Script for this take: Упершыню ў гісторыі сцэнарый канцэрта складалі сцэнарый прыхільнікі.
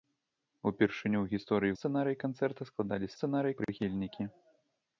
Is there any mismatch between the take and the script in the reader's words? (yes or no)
no